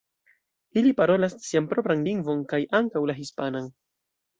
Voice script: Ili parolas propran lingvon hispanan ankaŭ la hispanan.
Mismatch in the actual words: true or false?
true